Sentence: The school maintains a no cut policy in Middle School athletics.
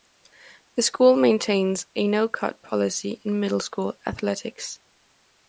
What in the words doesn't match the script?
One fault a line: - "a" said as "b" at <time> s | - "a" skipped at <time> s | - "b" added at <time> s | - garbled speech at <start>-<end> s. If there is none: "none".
none